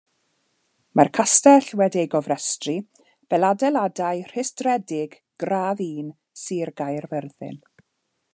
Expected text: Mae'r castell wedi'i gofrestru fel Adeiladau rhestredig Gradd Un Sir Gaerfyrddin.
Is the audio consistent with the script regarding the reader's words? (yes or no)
yes